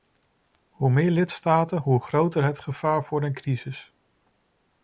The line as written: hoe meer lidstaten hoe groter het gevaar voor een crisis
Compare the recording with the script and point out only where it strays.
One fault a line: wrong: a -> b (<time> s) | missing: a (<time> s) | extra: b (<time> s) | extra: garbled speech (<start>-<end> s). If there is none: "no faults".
no faults